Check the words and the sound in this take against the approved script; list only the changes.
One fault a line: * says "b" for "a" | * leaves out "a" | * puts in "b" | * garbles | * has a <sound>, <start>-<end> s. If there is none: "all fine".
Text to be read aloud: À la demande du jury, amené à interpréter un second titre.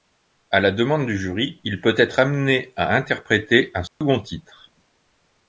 * puts in "il peut être"
* has a dropout, 3.9-4.0 s